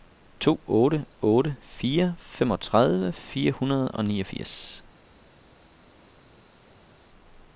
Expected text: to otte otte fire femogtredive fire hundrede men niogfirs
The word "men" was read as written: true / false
false